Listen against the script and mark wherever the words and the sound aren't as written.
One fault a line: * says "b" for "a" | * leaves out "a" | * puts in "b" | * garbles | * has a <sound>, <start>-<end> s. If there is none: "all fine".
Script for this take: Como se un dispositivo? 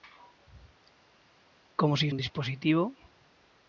all fine